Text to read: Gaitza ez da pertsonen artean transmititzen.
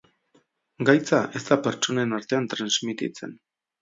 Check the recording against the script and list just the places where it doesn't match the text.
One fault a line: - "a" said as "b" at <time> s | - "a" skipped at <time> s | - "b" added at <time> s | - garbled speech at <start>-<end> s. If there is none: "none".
none